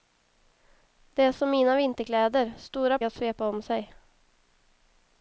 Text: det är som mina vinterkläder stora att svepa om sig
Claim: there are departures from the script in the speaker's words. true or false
false